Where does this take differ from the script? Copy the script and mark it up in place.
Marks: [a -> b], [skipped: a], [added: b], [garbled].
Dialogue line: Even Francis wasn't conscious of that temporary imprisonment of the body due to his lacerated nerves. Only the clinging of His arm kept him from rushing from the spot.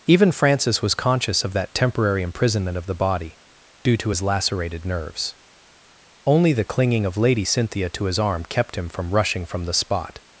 Even Francis [wasn't -> was] conscious of that temporary imprisonment of the body due to his lacerated nerves. Only the clinging of [added: Lady Cynthia to] His arm kept him from rushing from the spot.